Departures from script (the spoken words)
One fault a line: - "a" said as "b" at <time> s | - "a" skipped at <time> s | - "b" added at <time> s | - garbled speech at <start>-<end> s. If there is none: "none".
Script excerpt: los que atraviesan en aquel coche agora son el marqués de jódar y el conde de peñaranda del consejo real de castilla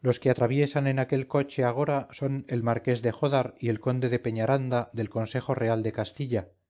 none